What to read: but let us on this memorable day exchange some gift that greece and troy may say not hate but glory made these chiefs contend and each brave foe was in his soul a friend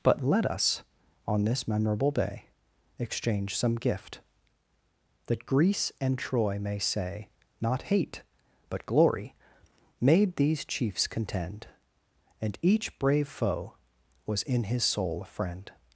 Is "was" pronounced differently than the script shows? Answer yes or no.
no